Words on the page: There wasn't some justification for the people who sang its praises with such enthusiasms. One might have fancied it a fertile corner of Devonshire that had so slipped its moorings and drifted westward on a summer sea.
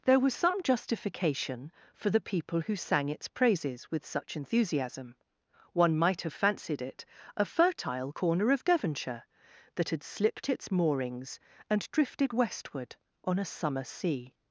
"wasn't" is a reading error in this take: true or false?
true